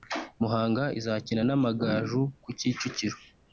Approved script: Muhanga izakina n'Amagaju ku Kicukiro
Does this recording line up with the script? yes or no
yes